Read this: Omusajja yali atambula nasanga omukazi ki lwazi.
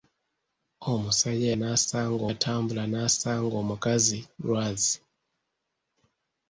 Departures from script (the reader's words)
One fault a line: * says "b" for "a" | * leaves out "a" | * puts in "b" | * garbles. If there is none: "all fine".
* says "nasanga" for "yali"
* leaves out "ki"